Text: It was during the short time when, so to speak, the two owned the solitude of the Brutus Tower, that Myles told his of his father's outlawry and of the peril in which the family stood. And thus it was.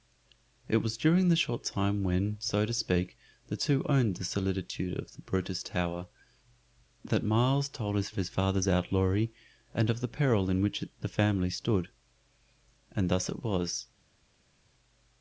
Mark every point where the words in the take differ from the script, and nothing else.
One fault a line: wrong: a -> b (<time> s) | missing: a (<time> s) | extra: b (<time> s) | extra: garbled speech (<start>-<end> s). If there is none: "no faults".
no faults